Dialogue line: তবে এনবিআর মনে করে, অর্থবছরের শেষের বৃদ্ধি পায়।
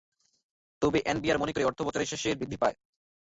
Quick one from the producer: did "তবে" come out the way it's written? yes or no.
yes